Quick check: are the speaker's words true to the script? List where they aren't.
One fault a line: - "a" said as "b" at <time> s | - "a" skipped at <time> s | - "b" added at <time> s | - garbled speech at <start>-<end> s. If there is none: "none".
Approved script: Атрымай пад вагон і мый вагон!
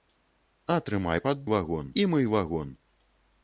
none